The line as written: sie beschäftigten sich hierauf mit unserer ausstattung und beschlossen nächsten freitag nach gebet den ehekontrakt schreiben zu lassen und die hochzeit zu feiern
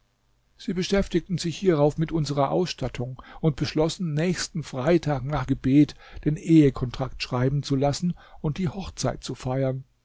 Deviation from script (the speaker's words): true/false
false